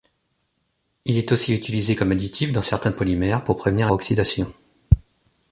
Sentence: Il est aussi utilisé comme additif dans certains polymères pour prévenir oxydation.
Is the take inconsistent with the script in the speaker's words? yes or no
no